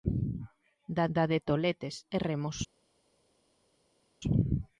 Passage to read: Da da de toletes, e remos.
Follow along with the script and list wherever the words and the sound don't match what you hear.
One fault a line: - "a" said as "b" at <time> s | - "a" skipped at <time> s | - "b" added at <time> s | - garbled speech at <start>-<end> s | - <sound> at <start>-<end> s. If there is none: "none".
none